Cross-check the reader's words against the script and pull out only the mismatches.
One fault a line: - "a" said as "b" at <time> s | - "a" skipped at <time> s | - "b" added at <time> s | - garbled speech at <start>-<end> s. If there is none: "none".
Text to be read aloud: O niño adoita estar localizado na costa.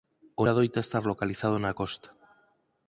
- "niño" skipped at 0.5 s